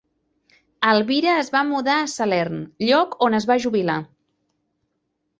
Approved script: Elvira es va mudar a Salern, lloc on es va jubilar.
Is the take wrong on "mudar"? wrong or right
right